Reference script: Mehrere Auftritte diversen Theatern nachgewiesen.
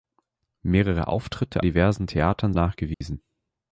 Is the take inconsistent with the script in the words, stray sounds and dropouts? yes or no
yes